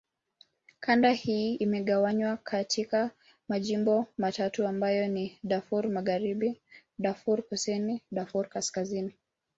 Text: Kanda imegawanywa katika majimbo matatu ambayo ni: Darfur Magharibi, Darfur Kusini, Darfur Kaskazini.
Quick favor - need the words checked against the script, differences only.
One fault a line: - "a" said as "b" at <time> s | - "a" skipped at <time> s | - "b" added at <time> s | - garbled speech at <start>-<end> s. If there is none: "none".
- "hii" added at 1.1 s